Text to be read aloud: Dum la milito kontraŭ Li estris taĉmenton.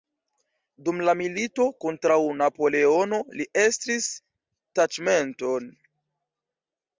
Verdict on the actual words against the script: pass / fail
fail